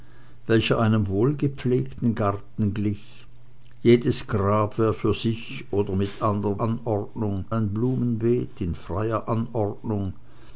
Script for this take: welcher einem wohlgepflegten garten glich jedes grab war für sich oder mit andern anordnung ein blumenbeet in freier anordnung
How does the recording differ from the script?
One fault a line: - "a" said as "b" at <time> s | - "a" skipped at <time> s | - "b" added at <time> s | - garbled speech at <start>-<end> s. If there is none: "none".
none